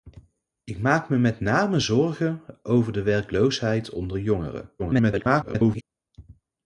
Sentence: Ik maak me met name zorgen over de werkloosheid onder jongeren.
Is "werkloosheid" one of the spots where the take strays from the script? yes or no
no